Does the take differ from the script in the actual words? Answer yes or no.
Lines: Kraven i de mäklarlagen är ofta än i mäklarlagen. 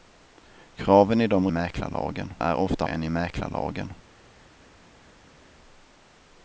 no